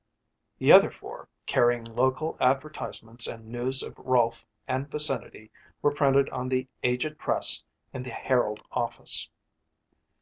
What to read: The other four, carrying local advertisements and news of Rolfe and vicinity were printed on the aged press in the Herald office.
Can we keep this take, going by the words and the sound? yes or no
yes